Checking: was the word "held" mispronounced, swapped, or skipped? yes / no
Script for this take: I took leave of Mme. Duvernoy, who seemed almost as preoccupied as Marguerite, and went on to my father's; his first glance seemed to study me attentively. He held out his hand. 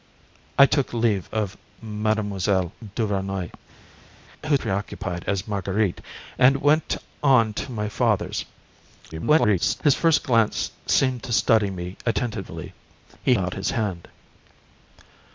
yes